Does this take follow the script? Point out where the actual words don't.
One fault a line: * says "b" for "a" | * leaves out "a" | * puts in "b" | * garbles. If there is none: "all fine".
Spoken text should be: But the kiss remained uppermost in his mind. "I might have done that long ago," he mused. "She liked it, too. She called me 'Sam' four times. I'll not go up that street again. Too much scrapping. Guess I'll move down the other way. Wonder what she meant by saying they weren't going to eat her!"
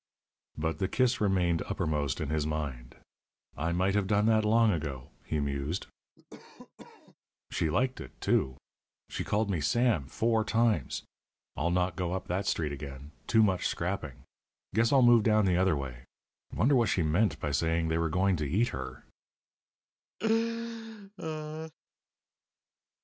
* says "were" for "weren't"